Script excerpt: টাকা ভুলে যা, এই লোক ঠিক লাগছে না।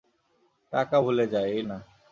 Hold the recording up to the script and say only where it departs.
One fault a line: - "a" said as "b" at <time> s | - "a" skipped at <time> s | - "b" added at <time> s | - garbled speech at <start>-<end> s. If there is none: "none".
- "লোক ঠিক লাগছে" skipped at 1.6 s